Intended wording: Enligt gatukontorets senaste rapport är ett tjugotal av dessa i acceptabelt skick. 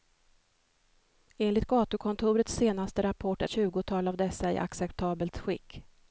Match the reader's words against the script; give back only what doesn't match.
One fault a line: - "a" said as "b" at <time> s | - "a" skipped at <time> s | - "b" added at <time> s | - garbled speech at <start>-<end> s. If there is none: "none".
- "ett" skipped at 3.5 s